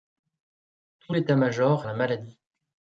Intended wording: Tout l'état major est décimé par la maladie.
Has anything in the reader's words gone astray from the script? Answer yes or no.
yes